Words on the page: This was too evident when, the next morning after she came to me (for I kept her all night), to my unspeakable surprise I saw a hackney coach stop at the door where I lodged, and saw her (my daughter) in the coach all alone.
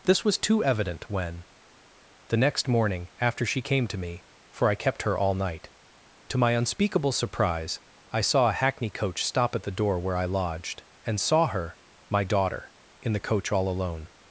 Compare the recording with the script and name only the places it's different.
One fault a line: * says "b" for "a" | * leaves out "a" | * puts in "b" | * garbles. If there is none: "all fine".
all fine